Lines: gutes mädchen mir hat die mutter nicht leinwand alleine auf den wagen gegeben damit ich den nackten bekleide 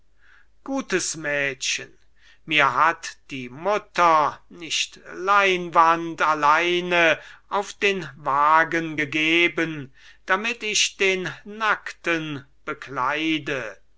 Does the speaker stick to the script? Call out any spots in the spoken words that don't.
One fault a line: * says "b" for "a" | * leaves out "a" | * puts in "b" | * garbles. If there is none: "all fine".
all fine